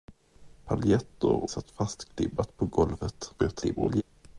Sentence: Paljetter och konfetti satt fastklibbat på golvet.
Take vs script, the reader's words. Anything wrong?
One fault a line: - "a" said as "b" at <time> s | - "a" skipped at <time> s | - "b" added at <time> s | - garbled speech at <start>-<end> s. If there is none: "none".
- "och konfetti" skipped at 1.5 s
- garbled speech at 3.4-4.0 s